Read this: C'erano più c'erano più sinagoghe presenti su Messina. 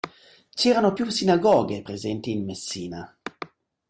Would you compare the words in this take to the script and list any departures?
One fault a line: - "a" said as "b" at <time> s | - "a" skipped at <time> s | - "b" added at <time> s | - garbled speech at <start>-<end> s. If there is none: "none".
- "c'erano più" skipped at 1.1 s
- "su" said as "in" at 2.3 s